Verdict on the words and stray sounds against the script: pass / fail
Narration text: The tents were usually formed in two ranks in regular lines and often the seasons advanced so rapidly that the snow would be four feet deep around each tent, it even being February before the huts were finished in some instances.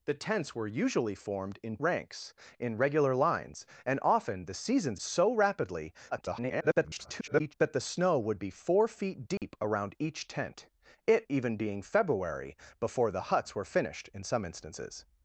fail